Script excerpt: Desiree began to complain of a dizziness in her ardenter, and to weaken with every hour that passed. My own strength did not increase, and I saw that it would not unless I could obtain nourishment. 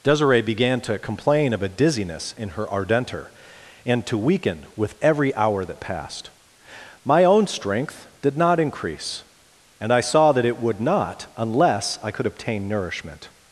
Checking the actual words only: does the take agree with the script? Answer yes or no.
yes